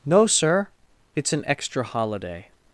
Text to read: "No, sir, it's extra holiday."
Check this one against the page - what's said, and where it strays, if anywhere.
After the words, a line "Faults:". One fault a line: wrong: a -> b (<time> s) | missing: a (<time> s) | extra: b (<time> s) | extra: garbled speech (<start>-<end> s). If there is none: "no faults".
"No, sir, it's an extra holiday."
Faults:
extra: an (1.3 s)